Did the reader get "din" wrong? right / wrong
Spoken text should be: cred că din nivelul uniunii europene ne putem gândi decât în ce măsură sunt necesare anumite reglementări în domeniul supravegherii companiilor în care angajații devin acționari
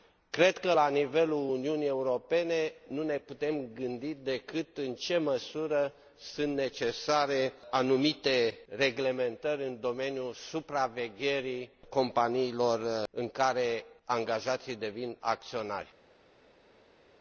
wrong